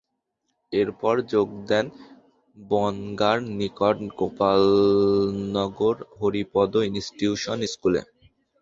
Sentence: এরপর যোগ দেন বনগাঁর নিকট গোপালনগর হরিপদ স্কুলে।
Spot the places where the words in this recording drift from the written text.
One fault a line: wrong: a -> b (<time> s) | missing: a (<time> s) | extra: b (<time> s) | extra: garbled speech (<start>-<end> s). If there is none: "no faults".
extra: ইনস্টিটিউশন (6.9 s)